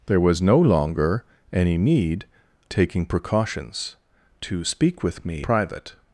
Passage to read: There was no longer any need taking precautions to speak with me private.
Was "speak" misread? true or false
false